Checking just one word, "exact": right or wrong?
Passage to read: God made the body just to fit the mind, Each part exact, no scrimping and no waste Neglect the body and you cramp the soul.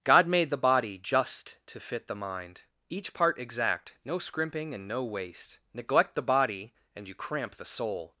right